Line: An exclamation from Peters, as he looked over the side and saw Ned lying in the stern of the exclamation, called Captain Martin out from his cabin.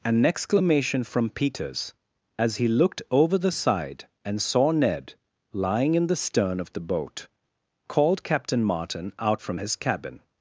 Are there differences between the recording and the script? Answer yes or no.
yes